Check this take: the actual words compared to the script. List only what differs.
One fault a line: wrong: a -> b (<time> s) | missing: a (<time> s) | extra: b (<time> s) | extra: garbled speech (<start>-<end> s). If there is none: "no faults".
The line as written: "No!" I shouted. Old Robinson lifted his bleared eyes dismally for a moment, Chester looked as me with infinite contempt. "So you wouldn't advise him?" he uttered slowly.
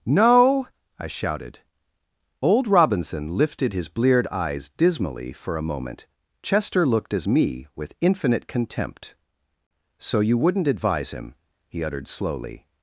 no faults